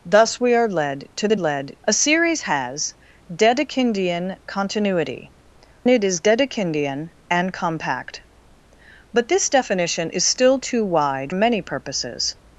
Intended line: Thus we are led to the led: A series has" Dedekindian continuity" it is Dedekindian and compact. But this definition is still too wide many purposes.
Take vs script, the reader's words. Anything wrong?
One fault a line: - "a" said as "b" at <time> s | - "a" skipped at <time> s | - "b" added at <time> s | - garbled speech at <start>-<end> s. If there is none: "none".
none